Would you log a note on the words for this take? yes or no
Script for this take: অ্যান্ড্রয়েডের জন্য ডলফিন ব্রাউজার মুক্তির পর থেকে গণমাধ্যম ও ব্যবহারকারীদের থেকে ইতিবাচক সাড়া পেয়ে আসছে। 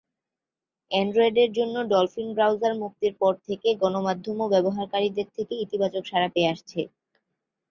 no